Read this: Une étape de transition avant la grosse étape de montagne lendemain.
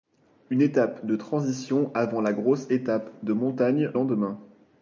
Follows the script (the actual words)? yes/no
yes